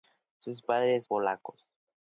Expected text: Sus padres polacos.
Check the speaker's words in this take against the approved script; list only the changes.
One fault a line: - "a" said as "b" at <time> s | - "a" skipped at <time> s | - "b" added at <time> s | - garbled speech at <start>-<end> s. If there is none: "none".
none